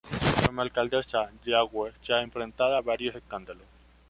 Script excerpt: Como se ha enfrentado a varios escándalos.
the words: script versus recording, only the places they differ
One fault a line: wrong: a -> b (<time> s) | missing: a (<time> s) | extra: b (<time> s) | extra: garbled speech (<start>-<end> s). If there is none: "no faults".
extra: alcaldesa Yagüe (0.6 s)